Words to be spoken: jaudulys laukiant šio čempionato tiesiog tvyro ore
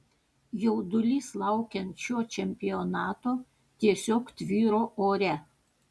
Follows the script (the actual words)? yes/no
yes